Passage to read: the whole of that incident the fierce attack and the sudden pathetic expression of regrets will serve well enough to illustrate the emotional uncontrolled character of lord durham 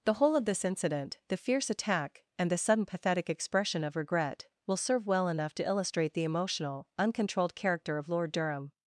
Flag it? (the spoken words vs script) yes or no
yes